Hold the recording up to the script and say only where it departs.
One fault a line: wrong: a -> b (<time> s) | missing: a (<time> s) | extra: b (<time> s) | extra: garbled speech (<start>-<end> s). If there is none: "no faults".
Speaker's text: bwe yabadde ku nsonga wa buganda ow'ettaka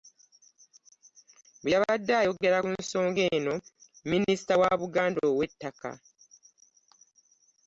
extra: ayogera (2.2 s)
extra: eno minisita (3.4 s)